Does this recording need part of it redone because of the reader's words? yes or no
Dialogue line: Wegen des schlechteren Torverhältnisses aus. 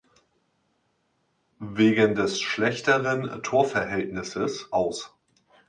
no